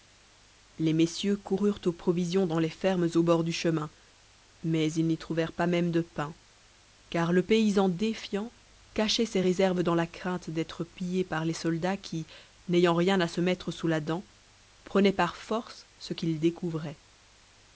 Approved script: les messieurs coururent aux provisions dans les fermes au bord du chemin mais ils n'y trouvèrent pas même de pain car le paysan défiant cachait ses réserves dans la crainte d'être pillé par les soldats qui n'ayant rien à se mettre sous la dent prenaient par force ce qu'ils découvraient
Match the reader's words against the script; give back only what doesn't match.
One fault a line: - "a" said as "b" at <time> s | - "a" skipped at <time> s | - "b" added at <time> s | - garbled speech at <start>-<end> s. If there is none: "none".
none